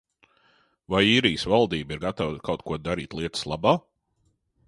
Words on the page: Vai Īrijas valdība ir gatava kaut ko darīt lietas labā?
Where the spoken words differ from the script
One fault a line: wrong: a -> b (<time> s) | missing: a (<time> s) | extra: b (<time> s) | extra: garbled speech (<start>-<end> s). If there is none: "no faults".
no faults